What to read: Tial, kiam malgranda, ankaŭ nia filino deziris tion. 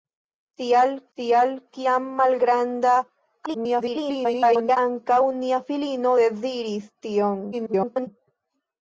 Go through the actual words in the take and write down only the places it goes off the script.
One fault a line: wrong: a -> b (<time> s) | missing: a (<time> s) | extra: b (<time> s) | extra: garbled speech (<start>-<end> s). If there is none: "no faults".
extra: tial (1.2 s)
extra: garbled speech (3.5-4.8 s)
extra: garbled speech (7.5-8.1 s)